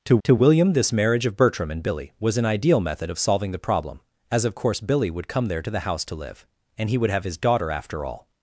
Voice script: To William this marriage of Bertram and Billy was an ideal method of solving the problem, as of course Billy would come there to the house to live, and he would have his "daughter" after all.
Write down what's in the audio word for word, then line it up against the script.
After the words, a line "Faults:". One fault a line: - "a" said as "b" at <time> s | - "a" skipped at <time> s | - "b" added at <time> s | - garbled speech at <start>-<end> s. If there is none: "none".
To to William this marriage of Bertram and Billy was an ideal method of solving the problem, as of course Billy would come there to the house to live, and he would have his "daughter" after all.
Faults:
- "to" added at 0.2 s